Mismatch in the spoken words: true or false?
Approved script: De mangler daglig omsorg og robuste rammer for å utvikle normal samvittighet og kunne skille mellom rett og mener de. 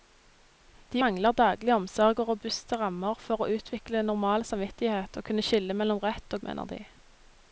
false